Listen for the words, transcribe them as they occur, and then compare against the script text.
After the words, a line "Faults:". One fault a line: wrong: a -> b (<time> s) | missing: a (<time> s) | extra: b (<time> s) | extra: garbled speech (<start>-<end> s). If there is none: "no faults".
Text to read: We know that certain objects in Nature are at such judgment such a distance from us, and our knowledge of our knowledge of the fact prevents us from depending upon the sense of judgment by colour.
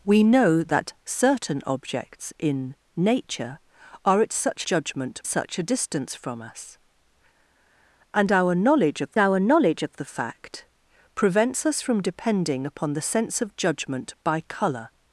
We know that certain objects in Nature are at such judgment such a distance from us, and our knowledge of our knowledge of the fact prevents us from depending upon the sense of judgment by colour.
Faults:
no faults